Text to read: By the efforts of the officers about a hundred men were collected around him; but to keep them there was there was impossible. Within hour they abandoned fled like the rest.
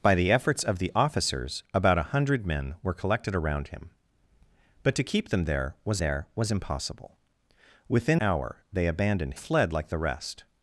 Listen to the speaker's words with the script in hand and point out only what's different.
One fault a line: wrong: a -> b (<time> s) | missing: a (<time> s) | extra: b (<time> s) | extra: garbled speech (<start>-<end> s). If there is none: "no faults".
no faults